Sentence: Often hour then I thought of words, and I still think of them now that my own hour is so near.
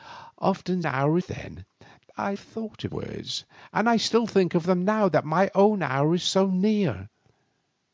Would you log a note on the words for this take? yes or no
no